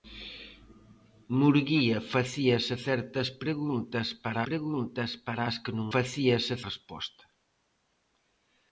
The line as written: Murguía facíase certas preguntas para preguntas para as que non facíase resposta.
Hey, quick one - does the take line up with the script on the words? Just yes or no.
yes